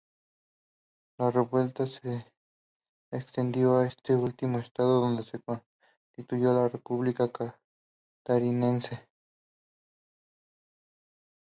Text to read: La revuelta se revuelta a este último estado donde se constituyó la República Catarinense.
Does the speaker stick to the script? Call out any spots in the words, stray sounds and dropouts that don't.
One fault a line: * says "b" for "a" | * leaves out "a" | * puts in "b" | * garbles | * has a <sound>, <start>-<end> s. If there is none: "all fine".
* says "extendió" for "revuelta"